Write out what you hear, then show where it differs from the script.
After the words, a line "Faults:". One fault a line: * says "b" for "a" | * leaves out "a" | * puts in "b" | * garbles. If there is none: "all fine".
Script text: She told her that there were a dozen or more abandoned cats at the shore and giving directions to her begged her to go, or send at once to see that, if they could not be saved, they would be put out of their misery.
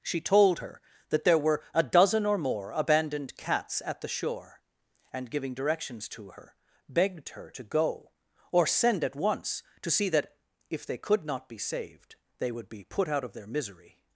She told her that there were a dozen or more abandoned cats at the shore and giving directions to her begged her to go, or send at once to see that, if they could not be saved, they would be put out of their misery.
Faults:
all fine